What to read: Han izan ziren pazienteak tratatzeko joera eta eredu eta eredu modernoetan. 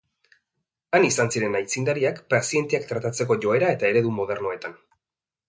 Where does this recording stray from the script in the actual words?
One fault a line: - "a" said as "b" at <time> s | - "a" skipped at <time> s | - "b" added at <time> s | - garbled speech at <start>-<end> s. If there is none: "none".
- "aitzindariak" added at 1.6 s
- "eta eredu" skipped at 4.2 s